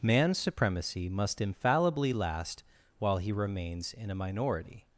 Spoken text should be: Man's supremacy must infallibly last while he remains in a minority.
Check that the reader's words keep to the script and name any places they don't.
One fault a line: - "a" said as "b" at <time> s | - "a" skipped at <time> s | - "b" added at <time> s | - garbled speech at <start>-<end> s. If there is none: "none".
none